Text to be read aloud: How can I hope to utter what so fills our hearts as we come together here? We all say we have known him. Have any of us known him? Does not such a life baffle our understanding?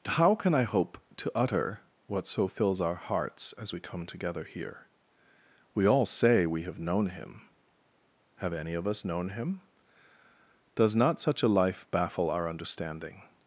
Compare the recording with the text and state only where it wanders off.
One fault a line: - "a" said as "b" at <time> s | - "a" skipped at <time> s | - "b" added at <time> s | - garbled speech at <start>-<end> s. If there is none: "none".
none